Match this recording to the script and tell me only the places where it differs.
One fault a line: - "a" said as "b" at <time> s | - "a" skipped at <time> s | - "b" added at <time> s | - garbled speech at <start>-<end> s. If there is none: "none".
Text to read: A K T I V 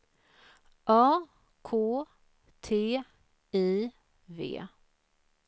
none